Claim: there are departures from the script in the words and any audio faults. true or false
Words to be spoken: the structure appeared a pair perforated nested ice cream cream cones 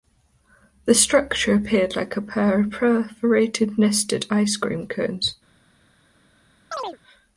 true